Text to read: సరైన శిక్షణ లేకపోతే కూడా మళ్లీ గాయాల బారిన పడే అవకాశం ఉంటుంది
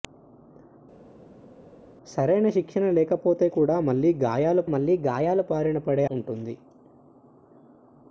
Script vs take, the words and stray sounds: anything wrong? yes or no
yes